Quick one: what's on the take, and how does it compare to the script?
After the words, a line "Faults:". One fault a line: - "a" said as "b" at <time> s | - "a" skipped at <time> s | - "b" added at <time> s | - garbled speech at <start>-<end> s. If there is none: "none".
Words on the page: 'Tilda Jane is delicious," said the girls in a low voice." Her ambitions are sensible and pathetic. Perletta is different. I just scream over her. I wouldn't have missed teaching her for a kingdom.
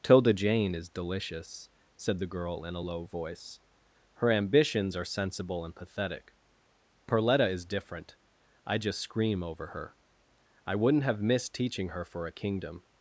'Tilda Jane is delicious," said the girl in a low voice." Her ambitions are sensible and pathetic. Perletta is different. I just scream over her. I wouldn't have missed teaching her for a kingdom.
Faults:
- "girls" said as "girl" at 2.3 s